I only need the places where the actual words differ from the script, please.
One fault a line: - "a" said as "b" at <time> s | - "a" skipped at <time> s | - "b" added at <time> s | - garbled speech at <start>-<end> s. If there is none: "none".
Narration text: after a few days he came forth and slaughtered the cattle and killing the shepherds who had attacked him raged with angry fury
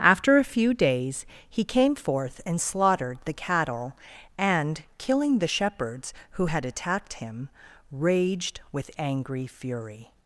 none